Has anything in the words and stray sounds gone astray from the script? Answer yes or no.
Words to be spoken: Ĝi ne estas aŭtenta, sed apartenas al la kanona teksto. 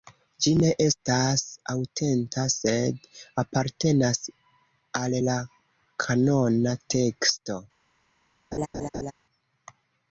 yes